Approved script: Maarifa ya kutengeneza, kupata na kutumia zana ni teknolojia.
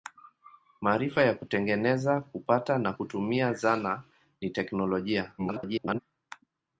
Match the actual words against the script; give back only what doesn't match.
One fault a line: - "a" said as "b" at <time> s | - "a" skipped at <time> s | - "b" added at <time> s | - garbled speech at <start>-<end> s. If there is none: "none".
- garbled speech at 5.4-6.0 s